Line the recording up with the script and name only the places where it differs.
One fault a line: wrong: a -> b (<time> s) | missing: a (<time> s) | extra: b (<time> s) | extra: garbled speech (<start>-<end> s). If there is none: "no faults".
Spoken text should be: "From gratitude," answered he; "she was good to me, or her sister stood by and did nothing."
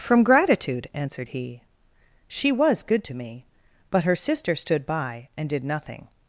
wrong: or -> but (3.9 s)